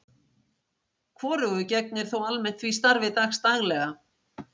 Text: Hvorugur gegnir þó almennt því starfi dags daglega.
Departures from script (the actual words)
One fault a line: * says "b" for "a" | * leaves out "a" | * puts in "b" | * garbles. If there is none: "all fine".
all fine